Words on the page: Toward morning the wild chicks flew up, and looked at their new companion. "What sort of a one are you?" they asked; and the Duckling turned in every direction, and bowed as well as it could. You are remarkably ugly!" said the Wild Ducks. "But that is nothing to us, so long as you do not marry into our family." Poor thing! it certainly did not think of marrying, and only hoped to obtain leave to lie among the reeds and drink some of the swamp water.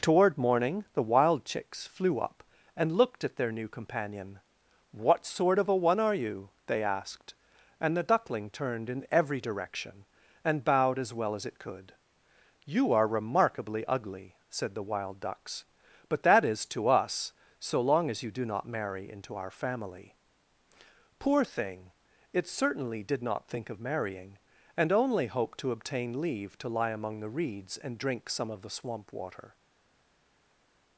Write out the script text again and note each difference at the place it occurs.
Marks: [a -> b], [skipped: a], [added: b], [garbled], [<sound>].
Toward morning the wild chicks flew up, and looked at their new companion. "What sort of a one are you?" they asked; and the Duckling turned in every direction, and bowed as well as it could. You are remarkably ugly!" said the Wild Ducks. "But that is [skipped: nothing] to us, so long as you do not marry into our family." Poor thing! it certainly did not think of marrying, and only hoped to obtain leave to lie among the reeds and drink some of the swamp water.